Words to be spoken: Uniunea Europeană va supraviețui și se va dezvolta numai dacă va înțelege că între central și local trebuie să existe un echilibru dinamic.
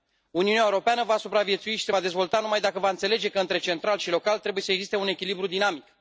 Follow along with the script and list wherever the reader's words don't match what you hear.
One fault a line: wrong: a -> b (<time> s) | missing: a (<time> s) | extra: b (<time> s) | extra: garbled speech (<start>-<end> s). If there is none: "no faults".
no faults